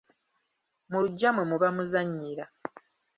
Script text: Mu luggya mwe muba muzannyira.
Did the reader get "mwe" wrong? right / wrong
right